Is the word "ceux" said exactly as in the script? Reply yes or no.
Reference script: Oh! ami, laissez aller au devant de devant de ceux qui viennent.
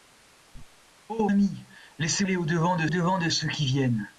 yes